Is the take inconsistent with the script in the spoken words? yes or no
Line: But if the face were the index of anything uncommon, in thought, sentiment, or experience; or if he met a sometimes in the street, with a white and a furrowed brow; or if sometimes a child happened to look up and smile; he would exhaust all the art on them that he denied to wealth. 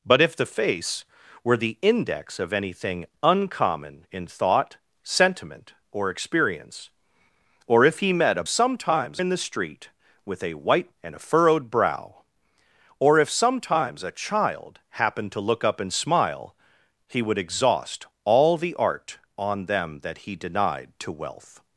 no